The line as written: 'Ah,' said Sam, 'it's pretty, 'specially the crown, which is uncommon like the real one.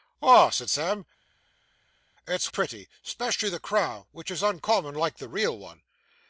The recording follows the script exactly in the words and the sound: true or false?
true